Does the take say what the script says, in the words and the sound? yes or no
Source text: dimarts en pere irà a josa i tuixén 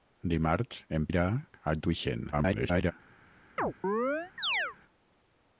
no